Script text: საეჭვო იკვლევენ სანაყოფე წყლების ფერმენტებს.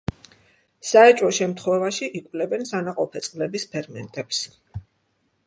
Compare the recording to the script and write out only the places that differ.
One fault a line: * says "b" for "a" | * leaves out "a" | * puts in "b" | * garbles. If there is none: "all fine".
* puts in "შემთხვევაში"